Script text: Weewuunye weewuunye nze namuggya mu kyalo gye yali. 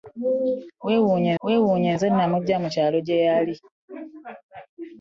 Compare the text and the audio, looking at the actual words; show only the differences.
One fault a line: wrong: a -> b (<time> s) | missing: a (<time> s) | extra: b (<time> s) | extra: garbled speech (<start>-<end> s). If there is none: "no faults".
no faults